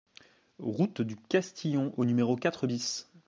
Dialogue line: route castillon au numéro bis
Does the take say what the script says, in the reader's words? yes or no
no